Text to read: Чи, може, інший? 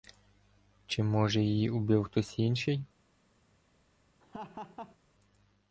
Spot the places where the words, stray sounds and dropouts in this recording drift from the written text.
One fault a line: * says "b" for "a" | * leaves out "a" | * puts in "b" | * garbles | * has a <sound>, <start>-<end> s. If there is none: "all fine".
* puts in "її убив хтось"
* has a laugh, 4.2-5.0 s